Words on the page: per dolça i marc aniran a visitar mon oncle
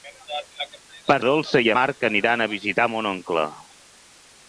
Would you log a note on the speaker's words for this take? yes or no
no